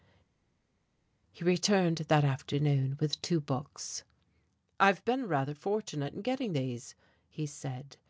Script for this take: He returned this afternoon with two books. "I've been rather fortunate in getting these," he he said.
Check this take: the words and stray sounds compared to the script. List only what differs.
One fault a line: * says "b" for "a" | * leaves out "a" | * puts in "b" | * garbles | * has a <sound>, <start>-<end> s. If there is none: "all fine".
* says "that" for "this"
* leaves out "he"